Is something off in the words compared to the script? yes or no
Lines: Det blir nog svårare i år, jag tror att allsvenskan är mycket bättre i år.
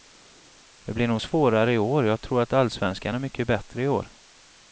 no